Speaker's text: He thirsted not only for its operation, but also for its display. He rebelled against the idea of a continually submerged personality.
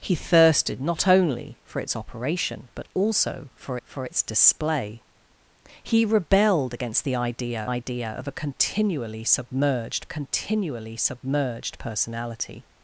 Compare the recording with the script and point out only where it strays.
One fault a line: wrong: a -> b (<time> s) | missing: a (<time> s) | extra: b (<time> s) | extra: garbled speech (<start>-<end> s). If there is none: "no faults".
extra: for (3.8 s)
extra: idea (7.6 s)
extra: continually submerged (10.1 s)